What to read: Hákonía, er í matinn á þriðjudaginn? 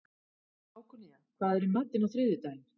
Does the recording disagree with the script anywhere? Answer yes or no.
yes